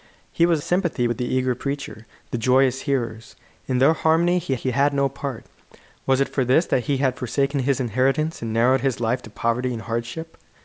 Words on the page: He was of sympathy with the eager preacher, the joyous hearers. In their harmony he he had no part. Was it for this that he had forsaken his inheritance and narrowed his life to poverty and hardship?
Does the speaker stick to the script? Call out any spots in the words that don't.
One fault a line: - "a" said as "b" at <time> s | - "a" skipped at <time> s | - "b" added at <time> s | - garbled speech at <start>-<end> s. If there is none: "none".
none